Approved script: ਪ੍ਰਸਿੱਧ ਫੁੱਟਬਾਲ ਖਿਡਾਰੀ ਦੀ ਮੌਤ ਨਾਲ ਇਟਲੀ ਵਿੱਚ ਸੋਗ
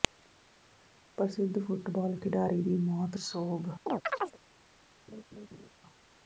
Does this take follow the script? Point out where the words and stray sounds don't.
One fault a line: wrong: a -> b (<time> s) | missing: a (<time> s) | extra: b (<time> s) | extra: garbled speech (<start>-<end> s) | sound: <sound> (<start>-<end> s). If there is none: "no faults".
missing: ਨਾਲ ਇਟਲੀ ਵਿੱਚ (3.2 s)
sound: chirp (3.9-4.4 s)
sound: laugh (5.1-5.7 s)